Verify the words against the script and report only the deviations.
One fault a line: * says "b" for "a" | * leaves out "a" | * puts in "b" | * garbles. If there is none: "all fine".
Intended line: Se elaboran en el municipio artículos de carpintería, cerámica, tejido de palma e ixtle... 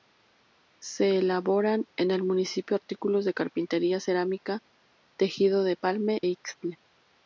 * leaves out "e"